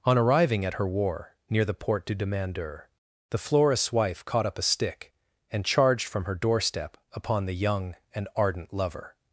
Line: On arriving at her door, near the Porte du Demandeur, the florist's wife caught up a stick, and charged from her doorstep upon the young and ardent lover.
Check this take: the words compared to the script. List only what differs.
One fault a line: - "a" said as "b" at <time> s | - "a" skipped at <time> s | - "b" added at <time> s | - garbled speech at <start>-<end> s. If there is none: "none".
- "door" said as "war" at 0.9 s